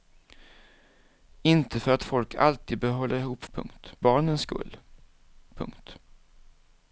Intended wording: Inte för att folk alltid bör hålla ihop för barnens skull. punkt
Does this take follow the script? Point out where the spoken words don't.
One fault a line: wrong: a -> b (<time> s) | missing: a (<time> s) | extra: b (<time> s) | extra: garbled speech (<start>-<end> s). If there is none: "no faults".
wrong: för -> punkt (3.5 s)